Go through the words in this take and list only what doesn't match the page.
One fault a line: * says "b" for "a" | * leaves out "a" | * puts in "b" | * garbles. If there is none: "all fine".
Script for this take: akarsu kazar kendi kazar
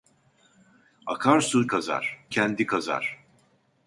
all fine